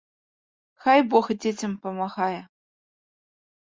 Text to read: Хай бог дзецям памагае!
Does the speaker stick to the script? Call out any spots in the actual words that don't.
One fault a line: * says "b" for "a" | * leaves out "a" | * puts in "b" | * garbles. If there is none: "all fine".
all fine